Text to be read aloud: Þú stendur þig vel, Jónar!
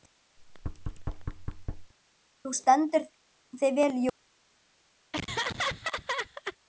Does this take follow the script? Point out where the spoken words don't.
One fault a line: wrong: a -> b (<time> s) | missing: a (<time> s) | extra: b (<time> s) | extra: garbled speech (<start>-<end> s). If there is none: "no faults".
no faults